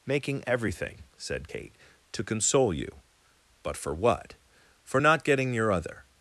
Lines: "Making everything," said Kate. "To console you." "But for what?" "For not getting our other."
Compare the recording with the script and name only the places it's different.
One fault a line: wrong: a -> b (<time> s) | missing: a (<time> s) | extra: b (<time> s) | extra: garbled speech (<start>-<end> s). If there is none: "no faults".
wrong: our -> your (5.5 s)